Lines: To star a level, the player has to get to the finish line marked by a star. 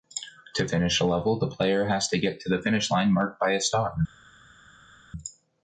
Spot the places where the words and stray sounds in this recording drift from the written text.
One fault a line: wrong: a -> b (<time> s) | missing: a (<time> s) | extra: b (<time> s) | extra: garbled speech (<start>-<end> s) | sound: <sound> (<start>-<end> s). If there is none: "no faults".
wrong: star -> finish (0.7 s)